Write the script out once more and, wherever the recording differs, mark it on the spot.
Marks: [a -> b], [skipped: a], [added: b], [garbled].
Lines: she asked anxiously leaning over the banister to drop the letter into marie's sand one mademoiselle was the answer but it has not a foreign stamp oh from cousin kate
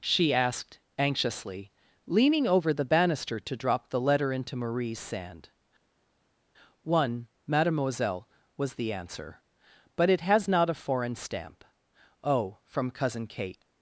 she asked anxiously leaning over the banister to drop the letter into marie's sand one mademoiselle was the answer but it has not a foreign stamp oh from cousin kate